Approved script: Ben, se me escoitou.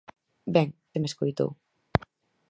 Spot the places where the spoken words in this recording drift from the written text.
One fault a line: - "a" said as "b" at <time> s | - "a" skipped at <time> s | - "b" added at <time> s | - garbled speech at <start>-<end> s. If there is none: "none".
none